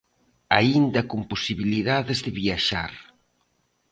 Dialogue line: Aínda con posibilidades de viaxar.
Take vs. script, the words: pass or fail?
pass